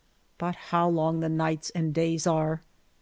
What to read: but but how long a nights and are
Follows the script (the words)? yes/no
no